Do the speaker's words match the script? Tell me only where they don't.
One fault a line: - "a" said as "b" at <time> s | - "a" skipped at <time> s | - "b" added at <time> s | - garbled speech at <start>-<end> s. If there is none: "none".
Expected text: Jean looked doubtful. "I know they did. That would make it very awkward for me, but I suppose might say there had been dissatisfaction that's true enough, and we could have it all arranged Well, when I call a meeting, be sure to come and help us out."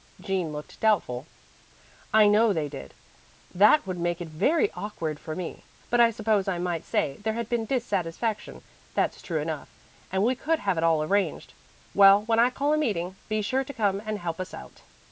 - "I" added at 6.5 s